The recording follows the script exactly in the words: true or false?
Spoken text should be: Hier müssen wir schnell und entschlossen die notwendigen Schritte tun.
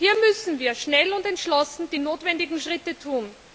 true